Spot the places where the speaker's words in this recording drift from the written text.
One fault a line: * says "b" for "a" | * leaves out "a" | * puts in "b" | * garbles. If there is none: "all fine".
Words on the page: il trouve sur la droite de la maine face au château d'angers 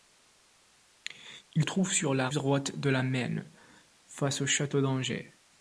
all fine